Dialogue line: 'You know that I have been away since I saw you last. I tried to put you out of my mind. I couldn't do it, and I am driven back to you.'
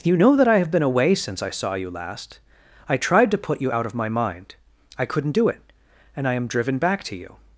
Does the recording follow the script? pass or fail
pass